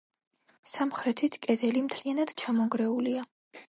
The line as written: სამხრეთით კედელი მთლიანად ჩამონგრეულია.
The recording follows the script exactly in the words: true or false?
true